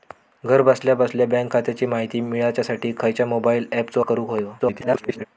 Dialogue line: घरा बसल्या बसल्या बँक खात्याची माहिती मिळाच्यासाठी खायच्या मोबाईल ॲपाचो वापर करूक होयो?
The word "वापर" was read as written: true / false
false